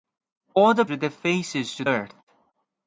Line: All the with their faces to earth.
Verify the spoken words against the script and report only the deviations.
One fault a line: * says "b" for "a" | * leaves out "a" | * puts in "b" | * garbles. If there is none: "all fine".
all fine